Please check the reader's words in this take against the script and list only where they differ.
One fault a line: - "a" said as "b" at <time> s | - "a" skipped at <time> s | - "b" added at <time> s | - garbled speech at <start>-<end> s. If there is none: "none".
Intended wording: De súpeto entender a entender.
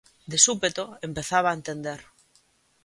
- "entender" said as "empezaba" at 1.1 s